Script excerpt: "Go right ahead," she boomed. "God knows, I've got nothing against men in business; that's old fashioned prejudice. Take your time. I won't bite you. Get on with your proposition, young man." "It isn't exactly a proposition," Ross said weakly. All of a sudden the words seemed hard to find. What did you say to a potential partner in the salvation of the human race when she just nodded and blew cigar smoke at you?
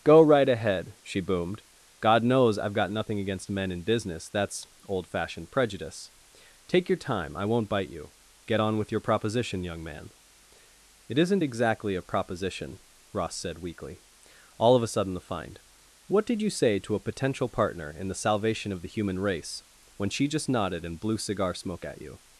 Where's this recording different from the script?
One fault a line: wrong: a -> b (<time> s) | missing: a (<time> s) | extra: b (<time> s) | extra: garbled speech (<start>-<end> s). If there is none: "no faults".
missing: words seemed hard to (15.2 s)